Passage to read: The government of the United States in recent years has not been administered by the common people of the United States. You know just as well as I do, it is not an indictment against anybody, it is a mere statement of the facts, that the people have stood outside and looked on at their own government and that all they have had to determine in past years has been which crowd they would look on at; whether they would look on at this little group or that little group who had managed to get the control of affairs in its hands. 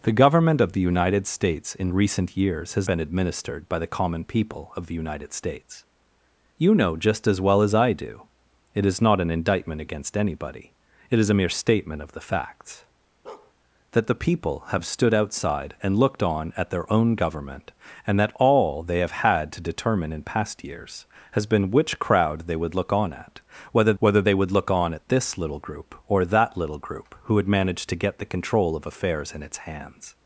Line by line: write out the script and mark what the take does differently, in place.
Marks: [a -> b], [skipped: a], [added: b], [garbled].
The government of the United States in recent years has [skipped: not] been administered by the common people of the United States. You know just as well as I do, it is not an indictment against anybody, it is a mere statement of the facts, that the people have stood outside and looked on at their own government and that all they have had to determine in past years has been which crowd they would look on at; whether [added: whether] they would look on at this little group or that little group who had managed to get the control of affairs in its hands.